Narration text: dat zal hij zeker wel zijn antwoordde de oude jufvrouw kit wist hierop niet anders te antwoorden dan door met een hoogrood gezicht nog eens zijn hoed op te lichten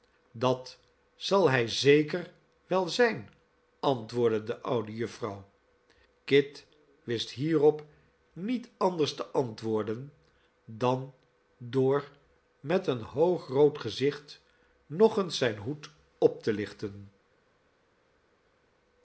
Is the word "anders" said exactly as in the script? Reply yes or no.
yes